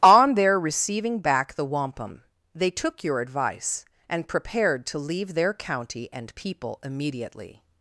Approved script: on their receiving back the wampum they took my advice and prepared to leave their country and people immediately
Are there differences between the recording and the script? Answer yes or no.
yes